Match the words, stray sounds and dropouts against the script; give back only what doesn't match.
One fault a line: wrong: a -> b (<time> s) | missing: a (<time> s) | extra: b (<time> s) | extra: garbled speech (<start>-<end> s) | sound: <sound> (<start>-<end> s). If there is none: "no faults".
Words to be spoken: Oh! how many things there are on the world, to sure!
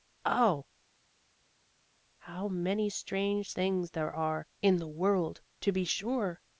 extra: strange (2.9 s)
wrong: on -> in (4.6 s)
extra: be (5.7 s)